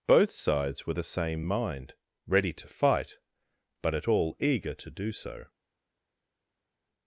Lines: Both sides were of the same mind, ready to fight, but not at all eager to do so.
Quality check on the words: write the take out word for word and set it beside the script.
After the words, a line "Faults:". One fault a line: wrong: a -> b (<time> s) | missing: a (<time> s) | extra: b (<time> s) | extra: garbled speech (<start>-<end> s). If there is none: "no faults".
Both sides were the same mind, ready to fight, but at all eager to do so.
Faults:
missing: of (0.9 s)
missing: not (3.9 s)